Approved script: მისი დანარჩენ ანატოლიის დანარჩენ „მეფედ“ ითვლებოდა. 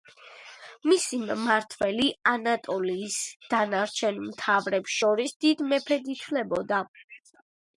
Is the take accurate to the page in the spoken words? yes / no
no